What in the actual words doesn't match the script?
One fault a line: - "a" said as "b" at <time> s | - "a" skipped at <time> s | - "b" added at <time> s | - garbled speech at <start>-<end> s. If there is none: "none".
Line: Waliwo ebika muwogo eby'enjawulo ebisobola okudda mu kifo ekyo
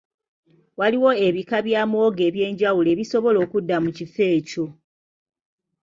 - "bya" added at 1.6 s